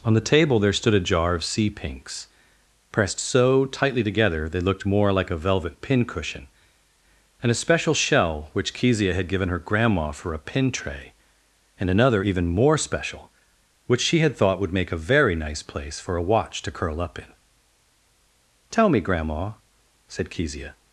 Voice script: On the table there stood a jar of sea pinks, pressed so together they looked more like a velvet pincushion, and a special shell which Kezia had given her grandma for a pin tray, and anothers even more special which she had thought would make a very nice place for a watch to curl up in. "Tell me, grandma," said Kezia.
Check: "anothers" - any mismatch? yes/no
yes